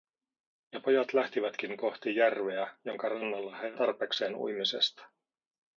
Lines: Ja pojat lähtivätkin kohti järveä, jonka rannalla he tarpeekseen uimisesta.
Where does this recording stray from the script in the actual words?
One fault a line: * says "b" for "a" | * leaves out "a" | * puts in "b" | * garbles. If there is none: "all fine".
all fine